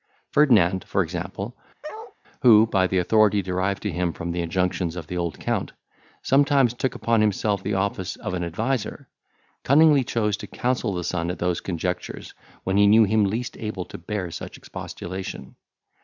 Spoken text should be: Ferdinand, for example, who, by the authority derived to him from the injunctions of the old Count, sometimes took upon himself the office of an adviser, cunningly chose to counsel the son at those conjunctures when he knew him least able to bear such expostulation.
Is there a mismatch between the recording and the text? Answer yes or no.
no